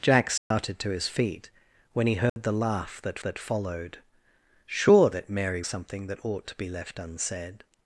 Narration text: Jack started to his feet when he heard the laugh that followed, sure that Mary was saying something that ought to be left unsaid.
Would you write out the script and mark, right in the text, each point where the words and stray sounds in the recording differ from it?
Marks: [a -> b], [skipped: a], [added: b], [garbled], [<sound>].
Jack started [dropout] to his feet when he heard [dropout] the laugh that [added: that] followed, sure that Mary [skipped: was saying] something that ought to be left unsaid.